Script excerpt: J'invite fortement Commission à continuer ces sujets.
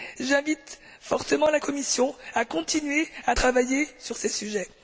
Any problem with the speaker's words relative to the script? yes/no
yes